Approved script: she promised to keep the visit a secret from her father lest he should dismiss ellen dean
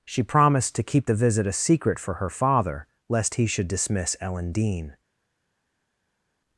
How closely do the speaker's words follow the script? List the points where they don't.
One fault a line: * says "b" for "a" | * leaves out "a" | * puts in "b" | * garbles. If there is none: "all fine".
* says "for" for "from"